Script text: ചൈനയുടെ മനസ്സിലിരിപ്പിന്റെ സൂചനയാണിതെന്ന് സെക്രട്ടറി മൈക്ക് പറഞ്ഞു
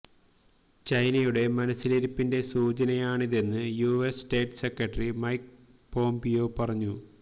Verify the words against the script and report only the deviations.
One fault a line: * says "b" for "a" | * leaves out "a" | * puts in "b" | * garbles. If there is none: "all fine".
* puts in "യുഎസ് സ്റ്റേറ്റ്"
* puts in "പോംപിയോ"